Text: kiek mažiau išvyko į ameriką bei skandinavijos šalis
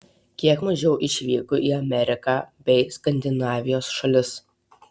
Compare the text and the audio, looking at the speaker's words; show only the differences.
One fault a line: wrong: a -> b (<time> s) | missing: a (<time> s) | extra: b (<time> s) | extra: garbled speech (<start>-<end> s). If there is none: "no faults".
no faults